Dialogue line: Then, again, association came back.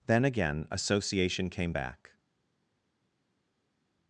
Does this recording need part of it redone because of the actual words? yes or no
no